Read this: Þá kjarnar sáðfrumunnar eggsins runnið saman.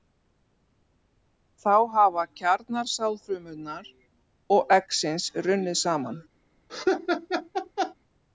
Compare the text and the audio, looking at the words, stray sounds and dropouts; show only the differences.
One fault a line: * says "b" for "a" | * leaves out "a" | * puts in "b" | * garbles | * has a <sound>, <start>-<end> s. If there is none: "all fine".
* puts in "hafa"
* puts in "og"
* has a laugh, 6.7-7.9 s